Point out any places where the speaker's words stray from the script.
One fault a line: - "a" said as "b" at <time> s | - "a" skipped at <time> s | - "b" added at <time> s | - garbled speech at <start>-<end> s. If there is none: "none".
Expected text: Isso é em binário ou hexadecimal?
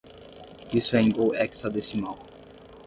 - "binário" skipped at 1.1 s